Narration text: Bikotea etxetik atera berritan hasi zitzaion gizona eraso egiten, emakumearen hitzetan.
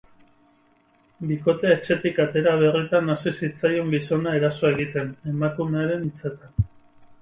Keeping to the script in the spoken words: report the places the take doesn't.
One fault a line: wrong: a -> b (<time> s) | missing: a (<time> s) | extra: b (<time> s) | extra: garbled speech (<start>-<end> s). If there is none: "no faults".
no faults